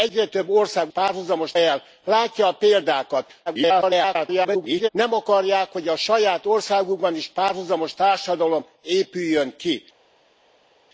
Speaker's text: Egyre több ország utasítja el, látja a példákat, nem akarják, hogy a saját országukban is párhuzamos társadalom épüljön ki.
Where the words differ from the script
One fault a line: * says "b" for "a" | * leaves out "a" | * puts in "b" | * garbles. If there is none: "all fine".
* says "párhuzamos" for "utasítja"
* garbles